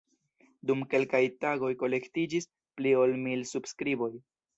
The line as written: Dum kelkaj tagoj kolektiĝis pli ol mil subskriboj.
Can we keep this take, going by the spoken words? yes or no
yes